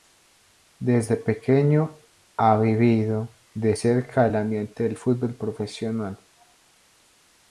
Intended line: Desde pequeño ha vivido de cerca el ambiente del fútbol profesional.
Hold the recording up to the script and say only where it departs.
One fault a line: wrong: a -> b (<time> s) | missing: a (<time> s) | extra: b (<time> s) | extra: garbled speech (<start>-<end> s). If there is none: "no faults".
no faults